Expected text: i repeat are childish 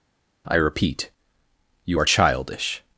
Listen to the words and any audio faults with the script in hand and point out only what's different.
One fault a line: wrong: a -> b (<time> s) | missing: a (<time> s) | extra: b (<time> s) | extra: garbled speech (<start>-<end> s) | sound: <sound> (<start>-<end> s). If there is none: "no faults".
extra: you (1.8 s)